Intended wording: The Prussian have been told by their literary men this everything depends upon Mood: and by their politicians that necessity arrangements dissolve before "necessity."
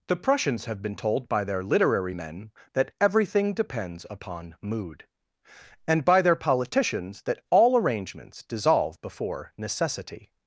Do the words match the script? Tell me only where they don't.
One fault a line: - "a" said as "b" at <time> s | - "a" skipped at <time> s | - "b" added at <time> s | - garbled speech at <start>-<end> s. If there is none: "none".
- "Prussian" said as "Prussians" at 0.1 s
- "this" said as "that" at 2.7 s
- "necessity" said as "all" at 7.5 s